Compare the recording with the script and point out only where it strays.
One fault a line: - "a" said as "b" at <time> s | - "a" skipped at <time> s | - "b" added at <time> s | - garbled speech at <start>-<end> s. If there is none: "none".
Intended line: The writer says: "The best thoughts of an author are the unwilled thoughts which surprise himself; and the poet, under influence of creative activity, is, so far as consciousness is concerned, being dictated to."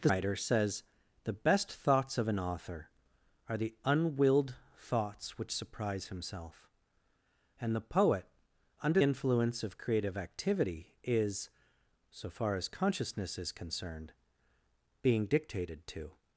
none